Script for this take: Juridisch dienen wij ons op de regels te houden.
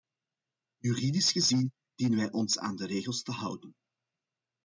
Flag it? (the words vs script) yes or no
yes